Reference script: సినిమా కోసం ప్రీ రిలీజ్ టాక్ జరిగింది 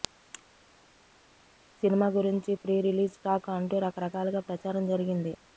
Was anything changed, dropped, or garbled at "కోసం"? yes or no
yes